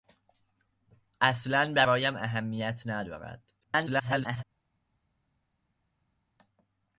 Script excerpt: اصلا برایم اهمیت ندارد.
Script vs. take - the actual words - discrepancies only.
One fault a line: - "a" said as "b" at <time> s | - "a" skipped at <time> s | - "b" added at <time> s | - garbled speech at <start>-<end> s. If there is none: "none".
- garbled speech at 3.6-4.4 s